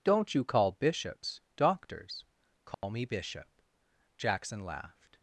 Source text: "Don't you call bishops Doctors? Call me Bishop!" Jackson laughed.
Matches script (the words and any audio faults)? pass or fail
fail